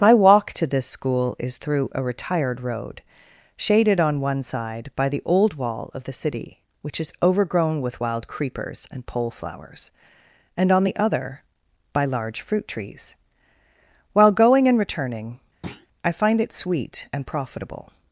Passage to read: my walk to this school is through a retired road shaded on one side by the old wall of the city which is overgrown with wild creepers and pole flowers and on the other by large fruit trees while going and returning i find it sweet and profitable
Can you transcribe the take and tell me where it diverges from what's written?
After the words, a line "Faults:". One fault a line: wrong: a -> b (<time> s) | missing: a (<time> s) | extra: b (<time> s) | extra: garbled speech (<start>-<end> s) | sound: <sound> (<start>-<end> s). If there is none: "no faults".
my walk to this school is through a retired road shaded on one side by the old wall of the city which is overgrown with wild creepers and pole flowers and on the other by large fruit trees while going and returning i find it sweet and profitable
Faults:
sound: thud (15.6-15.9 s)